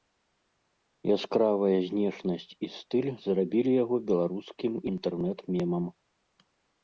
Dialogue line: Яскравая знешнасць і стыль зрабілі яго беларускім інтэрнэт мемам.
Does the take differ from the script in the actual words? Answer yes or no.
no